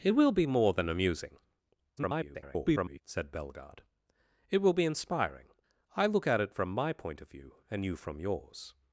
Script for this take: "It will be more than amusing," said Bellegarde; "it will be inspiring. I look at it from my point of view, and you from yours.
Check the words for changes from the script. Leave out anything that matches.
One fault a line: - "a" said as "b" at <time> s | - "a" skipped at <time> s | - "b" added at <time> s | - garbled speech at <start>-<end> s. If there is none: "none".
- garbled speech at 2.0-3.0 s